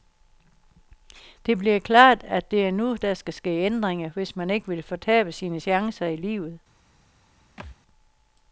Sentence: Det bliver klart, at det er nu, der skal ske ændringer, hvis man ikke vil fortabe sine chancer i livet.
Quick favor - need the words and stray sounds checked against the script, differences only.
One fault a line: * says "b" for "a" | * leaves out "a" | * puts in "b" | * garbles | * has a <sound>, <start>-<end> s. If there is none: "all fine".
* has a thud, 7.6-7.8 s